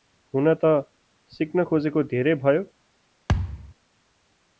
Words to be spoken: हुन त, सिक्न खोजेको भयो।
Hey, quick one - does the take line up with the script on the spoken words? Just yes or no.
no